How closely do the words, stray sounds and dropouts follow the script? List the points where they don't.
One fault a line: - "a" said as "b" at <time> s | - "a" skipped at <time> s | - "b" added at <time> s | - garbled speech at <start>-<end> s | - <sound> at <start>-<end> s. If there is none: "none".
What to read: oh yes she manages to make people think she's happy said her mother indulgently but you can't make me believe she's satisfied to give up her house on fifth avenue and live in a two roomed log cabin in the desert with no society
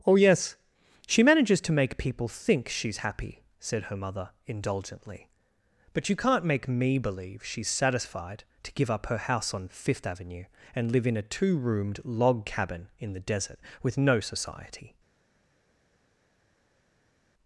none